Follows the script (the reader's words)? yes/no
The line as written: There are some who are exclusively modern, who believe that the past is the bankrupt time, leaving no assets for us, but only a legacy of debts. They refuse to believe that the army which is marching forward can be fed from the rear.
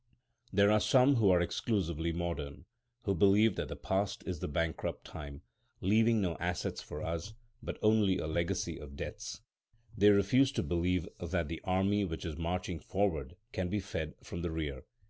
yes